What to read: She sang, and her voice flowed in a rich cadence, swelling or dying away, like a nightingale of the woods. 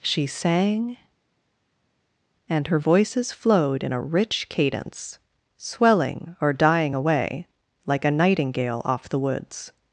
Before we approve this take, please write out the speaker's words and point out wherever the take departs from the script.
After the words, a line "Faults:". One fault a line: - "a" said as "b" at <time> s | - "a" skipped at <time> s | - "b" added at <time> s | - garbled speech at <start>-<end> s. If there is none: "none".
She sang, and her voices flowed in a rich cadence, swelling or dying away, like a nightingale off the woods.
Faults:
- "voice" said as "voices" at 2.8 s
- "of" said as "off" at 8.8 s